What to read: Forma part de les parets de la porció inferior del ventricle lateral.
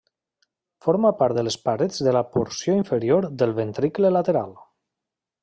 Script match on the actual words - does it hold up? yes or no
yes